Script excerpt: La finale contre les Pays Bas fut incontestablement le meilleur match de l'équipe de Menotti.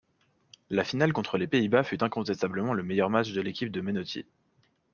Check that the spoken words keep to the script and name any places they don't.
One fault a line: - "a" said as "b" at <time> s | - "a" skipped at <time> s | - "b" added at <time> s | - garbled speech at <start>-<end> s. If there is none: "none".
none